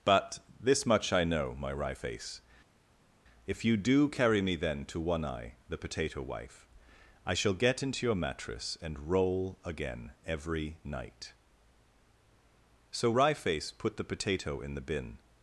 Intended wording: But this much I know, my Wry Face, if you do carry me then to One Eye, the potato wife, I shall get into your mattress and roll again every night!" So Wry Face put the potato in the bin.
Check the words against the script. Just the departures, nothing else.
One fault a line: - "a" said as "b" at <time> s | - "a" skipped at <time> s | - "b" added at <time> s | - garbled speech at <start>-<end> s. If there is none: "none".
none